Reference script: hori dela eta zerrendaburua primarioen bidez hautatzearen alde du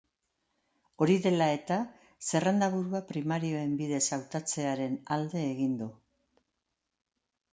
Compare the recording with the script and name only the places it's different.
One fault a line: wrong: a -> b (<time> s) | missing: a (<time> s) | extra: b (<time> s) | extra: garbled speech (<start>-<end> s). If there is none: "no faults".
extra: egin (5.5 s)